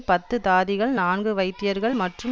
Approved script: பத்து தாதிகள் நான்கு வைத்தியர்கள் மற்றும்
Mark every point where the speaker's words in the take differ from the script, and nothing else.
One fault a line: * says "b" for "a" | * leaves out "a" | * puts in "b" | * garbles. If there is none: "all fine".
all fine